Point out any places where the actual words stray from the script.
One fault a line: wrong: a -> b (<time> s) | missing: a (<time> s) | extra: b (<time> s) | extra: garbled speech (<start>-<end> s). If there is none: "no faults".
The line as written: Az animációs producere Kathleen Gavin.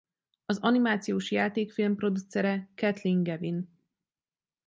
extra: játékfilm (1.3 s)